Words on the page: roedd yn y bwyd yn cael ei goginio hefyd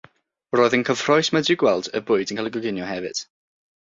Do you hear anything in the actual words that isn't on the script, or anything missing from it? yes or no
yes